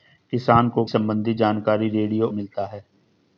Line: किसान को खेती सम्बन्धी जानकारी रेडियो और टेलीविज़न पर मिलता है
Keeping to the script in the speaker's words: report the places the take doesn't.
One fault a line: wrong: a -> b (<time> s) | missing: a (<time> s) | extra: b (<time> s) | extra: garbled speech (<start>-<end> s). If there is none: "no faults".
missing: खेती (0.8 s)
missing: और टेलीविज़न पर (2.3 s)